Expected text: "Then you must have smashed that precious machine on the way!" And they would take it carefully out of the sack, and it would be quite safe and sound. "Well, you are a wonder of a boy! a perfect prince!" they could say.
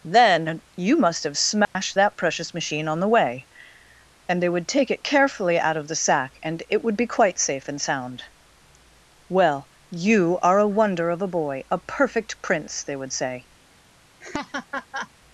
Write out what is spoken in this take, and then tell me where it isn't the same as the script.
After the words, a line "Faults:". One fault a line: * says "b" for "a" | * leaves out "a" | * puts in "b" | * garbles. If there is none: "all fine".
"Then you must have smashed that precious machine on the way!" And they would take it carefully out of the sack, and it would be quite safe and sound. "Well, you are a wonder of a boy! a perfect prince!" they would say.
Faults:
* says "would" for "could"